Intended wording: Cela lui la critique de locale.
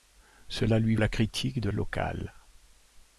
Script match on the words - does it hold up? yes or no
yes